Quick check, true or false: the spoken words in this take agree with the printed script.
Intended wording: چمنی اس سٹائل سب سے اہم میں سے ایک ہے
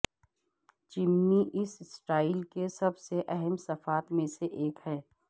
false